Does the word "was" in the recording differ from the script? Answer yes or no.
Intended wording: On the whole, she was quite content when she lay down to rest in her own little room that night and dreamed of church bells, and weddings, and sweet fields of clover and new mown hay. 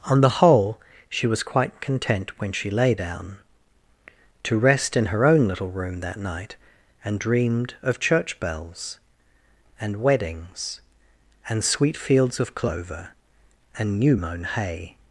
no